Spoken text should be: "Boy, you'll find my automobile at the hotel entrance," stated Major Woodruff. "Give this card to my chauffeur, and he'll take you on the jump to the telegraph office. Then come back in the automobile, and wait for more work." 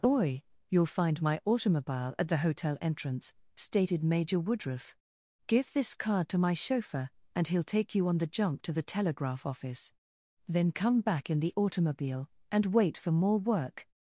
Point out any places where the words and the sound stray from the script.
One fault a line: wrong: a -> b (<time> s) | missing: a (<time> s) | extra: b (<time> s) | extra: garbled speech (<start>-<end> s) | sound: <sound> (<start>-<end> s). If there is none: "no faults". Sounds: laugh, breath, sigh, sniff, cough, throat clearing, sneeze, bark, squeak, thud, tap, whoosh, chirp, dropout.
wrong: Boy -> Oi (0.0 s)